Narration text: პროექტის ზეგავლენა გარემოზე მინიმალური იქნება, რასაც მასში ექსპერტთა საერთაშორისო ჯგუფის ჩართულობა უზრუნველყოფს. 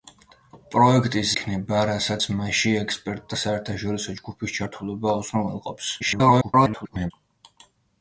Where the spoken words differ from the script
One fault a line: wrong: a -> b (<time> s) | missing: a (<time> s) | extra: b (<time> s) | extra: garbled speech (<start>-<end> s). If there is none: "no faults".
missing: ზეგავლენა გარემოზე მინიმალური (1.3 s)
extra: garbled speech (6.0-7.1 s)